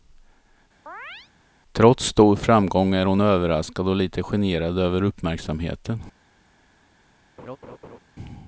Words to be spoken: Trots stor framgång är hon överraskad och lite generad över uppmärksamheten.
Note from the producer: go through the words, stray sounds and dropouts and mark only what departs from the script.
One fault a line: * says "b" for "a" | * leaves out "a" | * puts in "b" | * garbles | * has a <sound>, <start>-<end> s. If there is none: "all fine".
* has a chirp, 0.9-1.3 s
* has a laugh, 7.4-8.0 s